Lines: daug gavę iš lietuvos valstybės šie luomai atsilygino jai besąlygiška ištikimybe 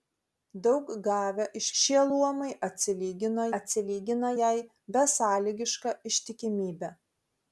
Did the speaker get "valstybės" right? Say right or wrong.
wrong